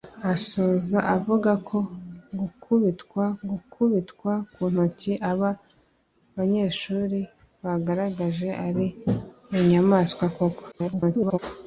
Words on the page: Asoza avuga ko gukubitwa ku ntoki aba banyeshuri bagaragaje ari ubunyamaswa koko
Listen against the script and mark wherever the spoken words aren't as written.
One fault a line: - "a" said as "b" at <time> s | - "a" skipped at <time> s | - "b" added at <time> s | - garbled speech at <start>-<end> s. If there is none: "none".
- "gukubitwa" added at 3.5 s
- garbled speech at 10.7-11.4 s